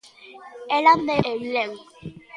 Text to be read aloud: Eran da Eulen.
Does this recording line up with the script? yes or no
yes